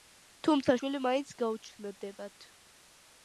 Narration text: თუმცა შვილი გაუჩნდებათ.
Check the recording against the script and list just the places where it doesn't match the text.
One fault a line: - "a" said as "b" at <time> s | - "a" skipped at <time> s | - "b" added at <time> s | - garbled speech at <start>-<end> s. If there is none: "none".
- "მაინც" added at 1.1 s